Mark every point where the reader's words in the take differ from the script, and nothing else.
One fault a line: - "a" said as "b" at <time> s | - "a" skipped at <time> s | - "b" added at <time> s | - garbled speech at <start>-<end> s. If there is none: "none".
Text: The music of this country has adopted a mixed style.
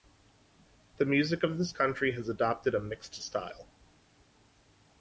none